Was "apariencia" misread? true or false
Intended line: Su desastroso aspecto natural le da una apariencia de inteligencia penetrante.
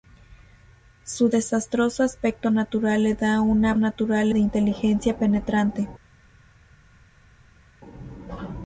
true